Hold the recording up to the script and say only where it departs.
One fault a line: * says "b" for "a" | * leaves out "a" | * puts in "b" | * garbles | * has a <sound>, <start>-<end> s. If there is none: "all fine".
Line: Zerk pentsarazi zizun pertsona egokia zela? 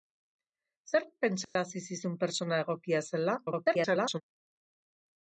* has a dropout, 1.4-1.6 s
* garbles